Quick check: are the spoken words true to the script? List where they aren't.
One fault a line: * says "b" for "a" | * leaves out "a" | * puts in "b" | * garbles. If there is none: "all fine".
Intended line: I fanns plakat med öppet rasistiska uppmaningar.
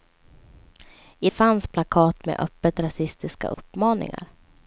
all fine